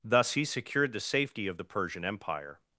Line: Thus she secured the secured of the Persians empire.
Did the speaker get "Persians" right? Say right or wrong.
wrong